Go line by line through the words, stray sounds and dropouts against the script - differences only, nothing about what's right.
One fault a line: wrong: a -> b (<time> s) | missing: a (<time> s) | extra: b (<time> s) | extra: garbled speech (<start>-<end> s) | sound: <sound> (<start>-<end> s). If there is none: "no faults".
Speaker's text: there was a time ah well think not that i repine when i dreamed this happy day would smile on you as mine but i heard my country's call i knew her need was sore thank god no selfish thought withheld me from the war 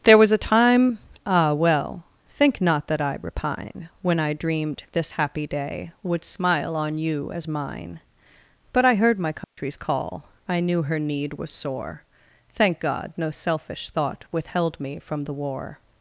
sound: dropout (9.4-9.6 s)